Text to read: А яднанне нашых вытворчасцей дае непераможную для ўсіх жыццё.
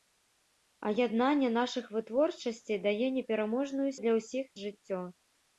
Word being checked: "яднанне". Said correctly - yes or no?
yes